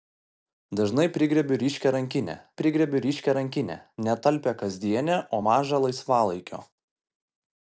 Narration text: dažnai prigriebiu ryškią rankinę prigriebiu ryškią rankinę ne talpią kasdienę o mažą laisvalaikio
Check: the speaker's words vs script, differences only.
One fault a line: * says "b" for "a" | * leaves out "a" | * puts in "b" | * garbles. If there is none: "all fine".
all fine